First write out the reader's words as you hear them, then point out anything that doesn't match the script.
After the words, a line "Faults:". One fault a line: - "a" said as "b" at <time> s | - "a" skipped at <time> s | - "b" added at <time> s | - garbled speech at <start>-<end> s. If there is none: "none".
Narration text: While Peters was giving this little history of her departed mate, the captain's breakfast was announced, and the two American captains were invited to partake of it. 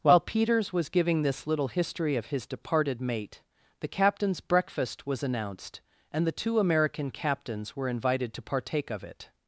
While Peters was giving this little history of his departed mate, the captain's breakfast was announced, and the two American captains were invited to partake of it.
Faults:
- "her" said as "his" at 2.3 s